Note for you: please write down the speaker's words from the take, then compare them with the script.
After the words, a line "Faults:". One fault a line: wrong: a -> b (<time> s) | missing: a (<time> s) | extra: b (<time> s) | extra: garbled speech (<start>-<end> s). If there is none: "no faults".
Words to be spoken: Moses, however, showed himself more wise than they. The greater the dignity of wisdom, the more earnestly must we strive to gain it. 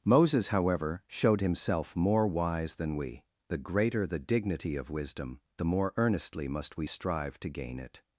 Moses, however, showed himself more wise than we. The greater the dignity of wisdom, the more earnestly must we strive to gain it.
Faults:
wrong: they -> we (2.9 s)